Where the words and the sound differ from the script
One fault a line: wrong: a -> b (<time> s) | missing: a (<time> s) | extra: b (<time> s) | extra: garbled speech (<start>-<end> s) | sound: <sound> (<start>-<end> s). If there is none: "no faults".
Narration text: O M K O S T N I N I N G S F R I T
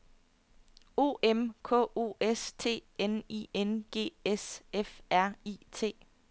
missing: I N (3.8 s)